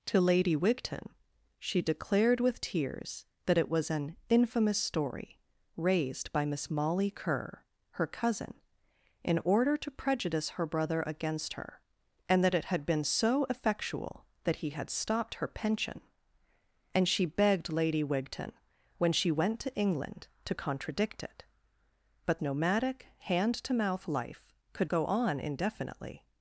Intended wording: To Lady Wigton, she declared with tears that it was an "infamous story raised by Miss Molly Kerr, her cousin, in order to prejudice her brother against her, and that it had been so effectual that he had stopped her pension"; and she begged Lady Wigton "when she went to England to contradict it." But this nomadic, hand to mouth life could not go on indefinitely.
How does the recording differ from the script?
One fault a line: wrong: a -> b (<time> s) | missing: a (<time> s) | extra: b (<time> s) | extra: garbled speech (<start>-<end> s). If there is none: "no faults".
missing: this (22.4 s)
missing: not (24.9 s)